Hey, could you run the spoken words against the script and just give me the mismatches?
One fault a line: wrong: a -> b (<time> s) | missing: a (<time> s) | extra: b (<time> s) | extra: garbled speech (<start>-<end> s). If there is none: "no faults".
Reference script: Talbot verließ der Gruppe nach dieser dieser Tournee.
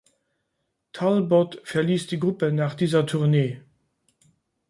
wrong: der -> die (2.1 s)
missing: dieser (3.1 s)